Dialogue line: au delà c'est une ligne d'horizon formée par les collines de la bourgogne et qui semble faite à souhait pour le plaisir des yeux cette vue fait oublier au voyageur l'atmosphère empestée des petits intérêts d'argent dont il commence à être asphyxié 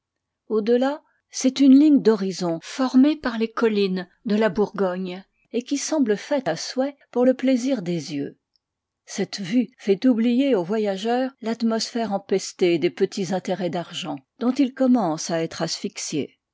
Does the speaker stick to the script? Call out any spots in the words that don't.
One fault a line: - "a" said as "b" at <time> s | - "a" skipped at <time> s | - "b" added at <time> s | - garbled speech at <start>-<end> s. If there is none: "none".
none